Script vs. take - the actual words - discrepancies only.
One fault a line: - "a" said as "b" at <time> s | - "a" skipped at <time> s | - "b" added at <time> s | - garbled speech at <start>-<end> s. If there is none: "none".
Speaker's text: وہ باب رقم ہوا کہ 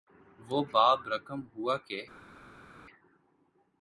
none